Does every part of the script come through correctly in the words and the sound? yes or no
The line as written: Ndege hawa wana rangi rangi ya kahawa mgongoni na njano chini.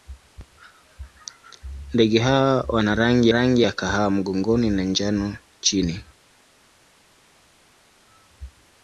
yes